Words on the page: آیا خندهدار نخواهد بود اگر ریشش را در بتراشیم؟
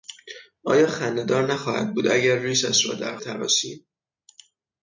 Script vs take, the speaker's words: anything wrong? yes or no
no